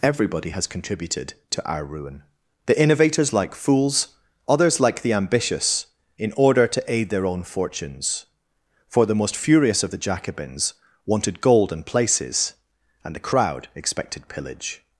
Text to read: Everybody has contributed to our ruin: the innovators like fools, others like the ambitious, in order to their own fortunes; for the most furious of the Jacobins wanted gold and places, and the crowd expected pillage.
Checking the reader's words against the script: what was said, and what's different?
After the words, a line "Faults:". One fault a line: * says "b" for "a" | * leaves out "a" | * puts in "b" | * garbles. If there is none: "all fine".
Everybody has contributed to our ruin: the innovators like fools, others like the ambitious, in order to aid their own fortunes; for the most furious of the Jacobins wanted gold and places, and the crowd expected pillage.
Faults:
* puts in "aid"